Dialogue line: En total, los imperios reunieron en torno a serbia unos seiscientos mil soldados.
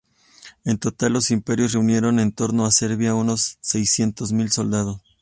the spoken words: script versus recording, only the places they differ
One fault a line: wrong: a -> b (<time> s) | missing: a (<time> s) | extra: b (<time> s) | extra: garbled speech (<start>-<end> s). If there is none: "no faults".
no faults